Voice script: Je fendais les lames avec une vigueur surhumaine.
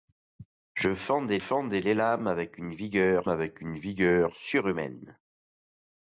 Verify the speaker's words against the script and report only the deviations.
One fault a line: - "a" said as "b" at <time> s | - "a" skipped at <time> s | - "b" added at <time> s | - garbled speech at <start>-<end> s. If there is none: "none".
- "fendais" added at 1.4 s
- "avec une vigueur" added at 3.3 s